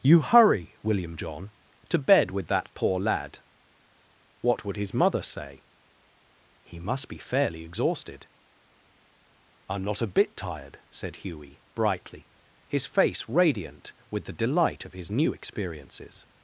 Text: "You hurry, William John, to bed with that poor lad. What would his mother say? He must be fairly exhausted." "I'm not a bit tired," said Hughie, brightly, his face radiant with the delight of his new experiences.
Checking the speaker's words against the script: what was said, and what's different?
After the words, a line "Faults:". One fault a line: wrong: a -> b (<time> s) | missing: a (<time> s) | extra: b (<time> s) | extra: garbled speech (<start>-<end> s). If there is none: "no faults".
"You hurry, William John, to bed with that poor lad. What would his mother say? He must be fairly exhausted." "I'm not a bit tired," said Hughie, brightly, his face radiant with the delight of his new experiences.
Faults:
no faults